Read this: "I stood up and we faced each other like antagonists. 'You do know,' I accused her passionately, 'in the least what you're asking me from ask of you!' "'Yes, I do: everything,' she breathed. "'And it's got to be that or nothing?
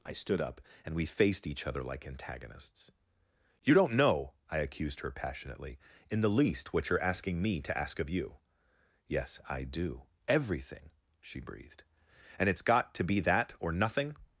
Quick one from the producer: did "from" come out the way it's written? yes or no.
no